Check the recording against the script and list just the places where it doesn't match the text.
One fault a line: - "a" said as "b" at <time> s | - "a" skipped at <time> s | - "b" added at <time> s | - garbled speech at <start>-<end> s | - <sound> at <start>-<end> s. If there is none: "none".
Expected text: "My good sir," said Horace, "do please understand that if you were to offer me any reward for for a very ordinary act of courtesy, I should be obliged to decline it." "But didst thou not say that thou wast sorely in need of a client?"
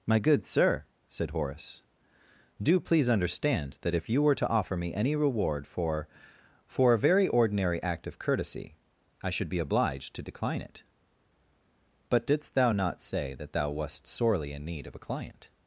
none